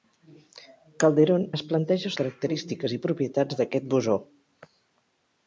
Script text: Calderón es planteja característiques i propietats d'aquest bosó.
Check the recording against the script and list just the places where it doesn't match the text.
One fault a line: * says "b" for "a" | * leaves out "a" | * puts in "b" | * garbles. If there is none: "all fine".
all fine